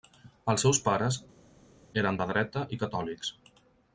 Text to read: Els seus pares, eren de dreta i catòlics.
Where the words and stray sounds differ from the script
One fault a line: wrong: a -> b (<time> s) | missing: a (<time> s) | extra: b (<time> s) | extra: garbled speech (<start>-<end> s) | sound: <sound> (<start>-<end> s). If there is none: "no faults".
no faults